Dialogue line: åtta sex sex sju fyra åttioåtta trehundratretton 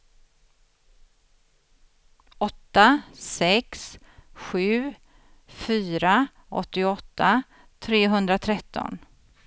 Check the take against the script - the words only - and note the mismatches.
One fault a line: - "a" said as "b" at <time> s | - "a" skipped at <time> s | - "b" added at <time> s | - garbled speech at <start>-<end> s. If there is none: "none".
- "sex" skipped at 4.0 s